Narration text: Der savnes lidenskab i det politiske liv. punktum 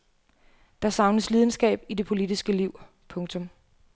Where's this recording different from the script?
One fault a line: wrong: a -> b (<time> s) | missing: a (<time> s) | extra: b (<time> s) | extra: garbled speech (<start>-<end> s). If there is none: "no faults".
no faults